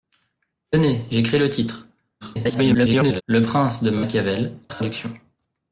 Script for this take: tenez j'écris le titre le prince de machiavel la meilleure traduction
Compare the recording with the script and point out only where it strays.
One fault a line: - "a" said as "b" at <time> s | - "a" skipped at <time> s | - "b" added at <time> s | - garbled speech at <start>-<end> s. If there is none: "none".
- garbled speech at 2.2-3.2 s
- "la meilleure" skipped at 4.6 s